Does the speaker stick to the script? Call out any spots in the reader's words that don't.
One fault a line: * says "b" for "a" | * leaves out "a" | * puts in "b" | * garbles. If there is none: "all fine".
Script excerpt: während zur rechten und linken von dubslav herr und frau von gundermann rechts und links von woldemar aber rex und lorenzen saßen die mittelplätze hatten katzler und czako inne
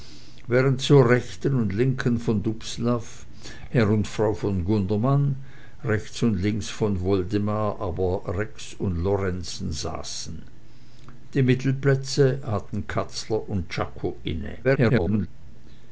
* garbles